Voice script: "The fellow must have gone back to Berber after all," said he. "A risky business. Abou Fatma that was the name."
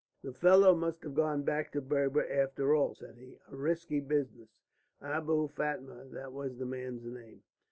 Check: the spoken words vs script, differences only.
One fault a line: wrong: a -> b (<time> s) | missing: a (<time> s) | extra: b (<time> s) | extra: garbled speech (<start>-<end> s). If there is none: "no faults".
extra: man's (6.7 s)